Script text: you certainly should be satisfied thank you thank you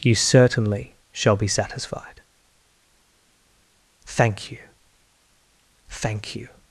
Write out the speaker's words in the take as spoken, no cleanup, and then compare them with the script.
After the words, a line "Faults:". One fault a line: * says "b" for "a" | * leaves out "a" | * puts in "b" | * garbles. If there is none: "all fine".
you certainly shall be satisfied thank you thank you
Faults:
* says "shall" for "should"